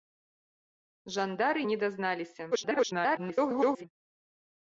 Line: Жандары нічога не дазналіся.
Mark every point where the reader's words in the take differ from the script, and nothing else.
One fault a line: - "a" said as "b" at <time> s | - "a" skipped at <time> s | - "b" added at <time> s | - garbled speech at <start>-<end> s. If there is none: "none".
- "нічога" skipped at 1.6 s
- garbled speech at 2.5-3.8 s